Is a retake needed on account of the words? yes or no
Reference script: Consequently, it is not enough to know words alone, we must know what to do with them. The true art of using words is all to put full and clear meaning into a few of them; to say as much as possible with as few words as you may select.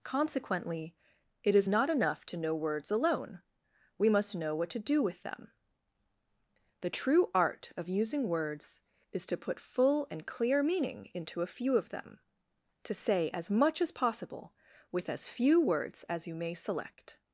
yes